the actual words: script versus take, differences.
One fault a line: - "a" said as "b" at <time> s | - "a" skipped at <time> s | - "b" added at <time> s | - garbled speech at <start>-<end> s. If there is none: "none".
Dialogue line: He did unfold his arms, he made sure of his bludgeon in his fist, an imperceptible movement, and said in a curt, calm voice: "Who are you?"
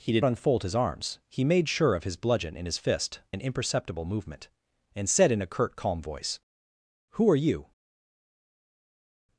none